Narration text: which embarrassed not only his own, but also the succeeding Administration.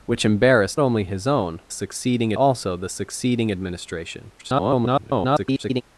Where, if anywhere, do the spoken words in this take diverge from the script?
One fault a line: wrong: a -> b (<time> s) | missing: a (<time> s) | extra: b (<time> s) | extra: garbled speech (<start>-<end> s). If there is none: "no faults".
missing: not (0.8 s)
wrong: but -> succeeding (1.7 s)
extra: garbled speech (4.4-5.8 s)